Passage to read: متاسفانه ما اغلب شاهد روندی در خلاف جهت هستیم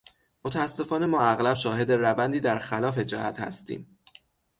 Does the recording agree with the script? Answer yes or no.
yes